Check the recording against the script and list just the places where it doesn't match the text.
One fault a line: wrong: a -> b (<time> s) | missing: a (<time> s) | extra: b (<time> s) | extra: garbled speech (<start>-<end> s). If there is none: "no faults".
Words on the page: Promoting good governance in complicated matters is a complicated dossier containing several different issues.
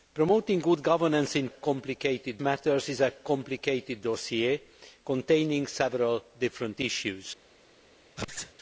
no faults